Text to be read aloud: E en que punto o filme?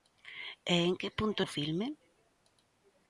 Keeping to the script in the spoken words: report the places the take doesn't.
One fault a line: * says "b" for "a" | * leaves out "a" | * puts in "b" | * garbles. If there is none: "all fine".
all fine